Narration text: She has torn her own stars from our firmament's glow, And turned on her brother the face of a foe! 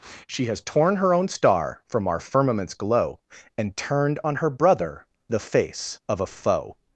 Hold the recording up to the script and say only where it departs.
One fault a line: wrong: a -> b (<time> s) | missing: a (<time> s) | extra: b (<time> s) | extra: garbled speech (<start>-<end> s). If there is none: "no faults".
wrong: stars -> star (1.3 s)